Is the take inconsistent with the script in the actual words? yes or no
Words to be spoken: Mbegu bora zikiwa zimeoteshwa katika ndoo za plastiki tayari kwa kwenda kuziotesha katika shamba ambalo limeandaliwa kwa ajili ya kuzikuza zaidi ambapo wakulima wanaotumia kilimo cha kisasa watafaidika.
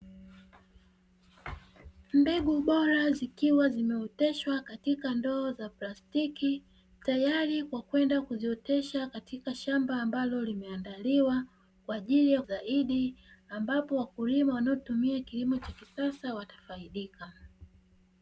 yes